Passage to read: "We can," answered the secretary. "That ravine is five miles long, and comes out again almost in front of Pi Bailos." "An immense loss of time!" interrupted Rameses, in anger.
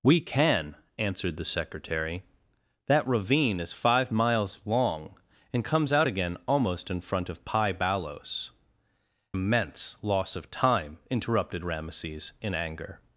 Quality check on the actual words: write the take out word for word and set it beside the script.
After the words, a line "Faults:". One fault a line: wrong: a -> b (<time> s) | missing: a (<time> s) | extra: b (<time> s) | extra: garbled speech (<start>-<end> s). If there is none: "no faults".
"We can," answered the secretary. "That ravine is five miles long, and comes out again almost in front of Pi Bailos." "Immense loss of time!" interrupted Rameses, in anger.
Faults:
missing: An (8.5 s)